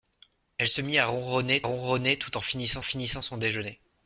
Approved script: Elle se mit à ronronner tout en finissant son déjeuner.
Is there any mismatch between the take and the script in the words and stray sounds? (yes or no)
yes